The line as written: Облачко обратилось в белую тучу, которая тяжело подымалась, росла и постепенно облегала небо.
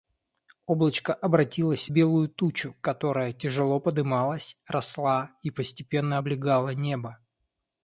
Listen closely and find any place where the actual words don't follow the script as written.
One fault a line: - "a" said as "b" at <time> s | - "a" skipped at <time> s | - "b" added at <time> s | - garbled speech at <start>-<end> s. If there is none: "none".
- "в" skipped at 1.9 s